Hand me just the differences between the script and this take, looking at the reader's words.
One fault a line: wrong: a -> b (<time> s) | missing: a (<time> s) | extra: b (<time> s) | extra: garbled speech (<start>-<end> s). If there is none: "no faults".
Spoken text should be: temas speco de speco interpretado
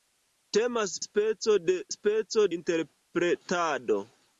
no faults